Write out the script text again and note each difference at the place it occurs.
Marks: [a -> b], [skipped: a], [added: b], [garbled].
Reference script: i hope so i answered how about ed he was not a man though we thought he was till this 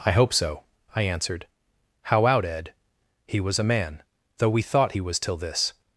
i hope so i answered how [about -> out] ed he was [skipped: not] a man though we thought he was till this